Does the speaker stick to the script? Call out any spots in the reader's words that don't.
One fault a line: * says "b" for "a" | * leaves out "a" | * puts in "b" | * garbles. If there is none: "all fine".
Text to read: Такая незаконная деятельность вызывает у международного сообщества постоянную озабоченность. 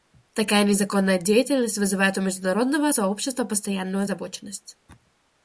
all fine